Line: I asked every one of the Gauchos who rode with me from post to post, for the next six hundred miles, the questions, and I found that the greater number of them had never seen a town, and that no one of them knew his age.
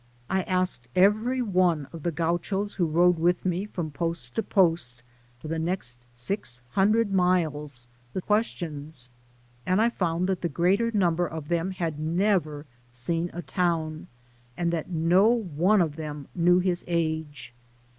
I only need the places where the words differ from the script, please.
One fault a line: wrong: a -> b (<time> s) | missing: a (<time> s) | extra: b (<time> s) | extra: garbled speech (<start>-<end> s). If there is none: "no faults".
no faults